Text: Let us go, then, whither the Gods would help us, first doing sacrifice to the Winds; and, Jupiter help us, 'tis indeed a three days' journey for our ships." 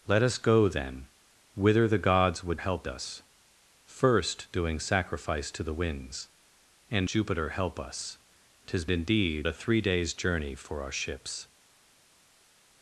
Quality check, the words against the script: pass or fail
pass